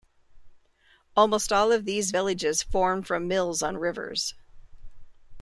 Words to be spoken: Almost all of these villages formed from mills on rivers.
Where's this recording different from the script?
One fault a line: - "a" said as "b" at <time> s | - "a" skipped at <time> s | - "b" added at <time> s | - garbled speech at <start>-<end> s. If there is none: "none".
none